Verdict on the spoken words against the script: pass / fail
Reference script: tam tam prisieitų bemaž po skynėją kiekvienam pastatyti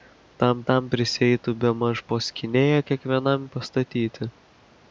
pass